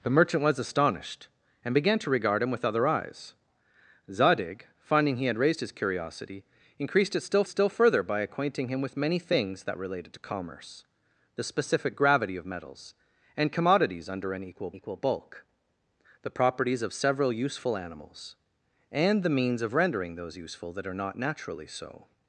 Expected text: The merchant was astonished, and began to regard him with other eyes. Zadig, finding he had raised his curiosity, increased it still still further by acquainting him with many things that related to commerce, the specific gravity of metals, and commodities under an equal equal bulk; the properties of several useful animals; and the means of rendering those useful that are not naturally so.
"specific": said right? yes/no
yes